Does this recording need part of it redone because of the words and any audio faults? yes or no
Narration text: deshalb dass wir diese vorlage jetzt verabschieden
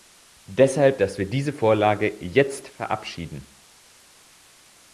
no